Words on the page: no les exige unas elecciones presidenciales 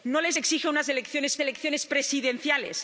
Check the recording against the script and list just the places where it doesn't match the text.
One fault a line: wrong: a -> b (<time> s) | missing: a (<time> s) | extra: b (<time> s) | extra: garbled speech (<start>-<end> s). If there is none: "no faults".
extra: elecciones (1.4 s)